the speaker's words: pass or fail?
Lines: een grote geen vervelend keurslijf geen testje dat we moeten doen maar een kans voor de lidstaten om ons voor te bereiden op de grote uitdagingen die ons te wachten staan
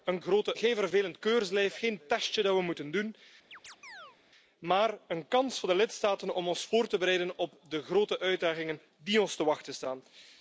pass